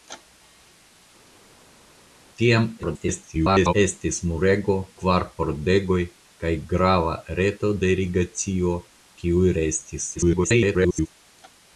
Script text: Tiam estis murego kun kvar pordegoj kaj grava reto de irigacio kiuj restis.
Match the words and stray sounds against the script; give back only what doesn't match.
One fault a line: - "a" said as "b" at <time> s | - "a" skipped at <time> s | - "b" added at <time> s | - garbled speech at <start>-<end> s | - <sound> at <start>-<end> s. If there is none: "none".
- garbled speech at 2.8-3.7 s
- "kun" skipped at 4.8 s
- garbled speech at 10.1-11.1 s